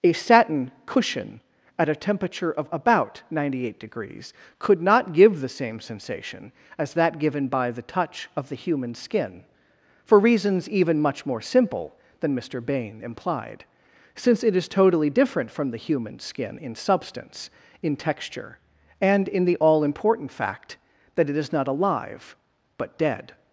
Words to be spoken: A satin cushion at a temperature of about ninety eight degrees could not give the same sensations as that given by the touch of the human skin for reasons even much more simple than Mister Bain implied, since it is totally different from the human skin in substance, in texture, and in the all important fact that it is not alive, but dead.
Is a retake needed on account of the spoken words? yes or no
yes